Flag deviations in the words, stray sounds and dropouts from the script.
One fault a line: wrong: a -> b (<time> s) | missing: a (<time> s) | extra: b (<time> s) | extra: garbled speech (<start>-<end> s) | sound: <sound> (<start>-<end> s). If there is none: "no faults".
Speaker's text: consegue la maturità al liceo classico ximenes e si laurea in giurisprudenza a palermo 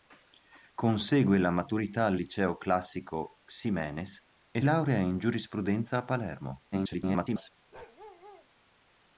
missing: si (4.6 s)
extra: garbled speech (6.7-7.5 s)
sound: bark (7.7-8.5 s)